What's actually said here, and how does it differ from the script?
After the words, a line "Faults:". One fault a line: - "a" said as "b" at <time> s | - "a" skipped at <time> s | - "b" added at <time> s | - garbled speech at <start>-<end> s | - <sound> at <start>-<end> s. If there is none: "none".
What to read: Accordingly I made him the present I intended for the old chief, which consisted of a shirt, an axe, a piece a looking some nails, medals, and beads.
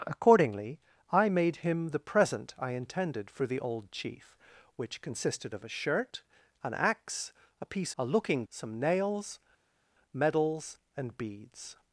Accordingly I made him the present I intended for the old chief, which consisted of a shirt, an axe, a piece a looking some nails, medals, and beads.
Faults:
none